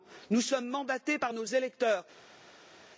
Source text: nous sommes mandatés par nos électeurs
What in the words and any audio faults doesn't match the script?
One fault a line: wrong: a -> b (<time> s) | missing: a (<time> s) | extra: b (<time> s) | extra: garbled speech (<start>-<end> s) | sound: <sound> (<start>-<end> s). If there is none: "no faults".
no faults